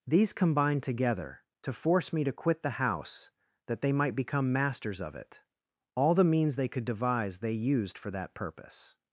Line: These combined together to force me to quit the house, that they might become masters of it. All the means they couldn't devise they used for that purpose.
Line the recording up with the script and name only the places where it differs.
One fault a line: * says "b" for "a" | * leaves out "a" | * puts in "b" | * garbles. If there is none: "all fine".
* says "could" for "couldn't"